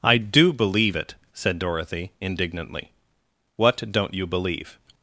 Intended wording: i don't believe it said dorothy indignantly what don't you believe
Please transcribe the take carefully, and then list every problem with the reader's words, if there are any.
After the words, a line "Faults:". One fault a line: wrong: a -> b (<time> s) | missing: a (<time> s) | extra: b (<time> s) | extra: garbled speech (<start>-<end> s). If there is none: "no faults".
i do believe it said dorothy indignantly what don't you believe
Faults:
wrong: don't -> do (0.2 s)